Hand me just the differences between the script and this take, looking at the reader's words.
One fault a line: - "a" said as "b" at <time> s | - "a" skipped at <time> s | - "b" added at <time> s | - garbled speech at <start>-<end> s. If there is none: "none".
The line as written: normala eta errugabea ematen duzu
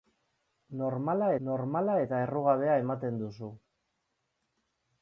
- "normala" added at 1.5 s